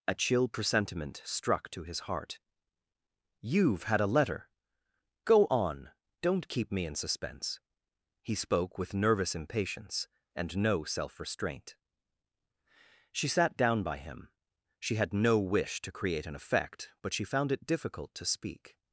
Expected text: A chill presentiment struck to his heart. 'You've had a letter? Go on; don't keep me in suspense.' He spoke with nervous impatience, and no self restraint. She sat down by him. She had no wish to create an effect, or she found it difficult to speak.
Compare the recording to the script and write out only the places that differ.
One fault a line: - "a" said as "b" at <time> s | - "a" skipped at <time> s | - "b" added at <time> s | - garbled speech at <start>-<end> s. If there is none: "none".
- "or" said as "but" at 17.0 s